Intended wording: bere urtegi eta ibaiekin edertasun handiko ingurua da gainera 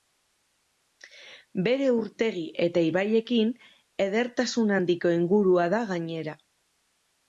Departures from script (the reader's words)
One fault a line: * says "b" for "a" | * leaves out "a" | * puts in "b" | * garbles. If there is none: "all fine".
all fine